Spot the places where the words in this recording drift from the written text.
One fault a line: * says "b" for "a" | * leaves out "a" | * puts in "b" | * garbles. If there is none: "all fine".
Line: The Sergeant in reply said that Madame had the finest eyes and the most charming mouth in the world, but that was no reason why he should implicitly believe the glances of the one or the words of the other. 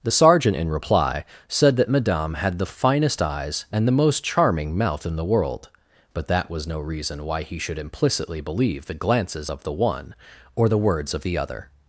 all fine